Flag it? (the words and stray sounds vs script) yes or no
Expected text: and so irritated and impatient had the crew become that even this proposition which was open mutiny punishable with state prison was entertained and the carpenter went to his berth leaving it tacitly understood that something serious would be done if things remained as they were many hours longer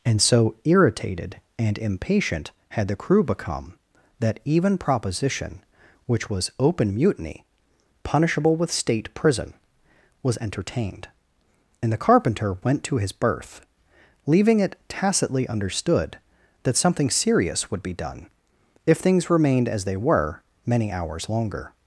yes